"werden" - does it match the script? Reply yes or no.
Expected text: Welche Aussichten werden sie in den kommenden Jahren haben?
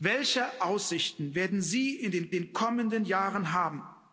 yes